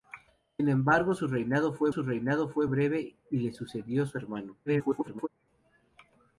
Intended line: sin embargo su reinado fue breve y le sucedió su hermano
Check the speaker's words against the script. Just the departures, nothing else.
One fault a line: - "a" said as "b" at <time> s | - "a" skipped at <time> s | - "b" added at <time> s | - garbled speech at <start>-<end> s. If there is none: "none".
- "su reinado fue" added at 1.9 s
- garbled speech at 4.7-5.3 s